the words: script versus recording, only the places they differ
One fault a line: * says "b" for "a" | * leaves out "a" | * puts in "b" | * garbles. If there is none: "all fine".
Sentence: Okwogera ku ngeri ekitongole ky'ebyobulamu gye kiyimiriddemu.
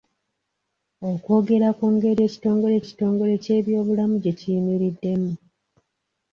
* puts in "ekitongole"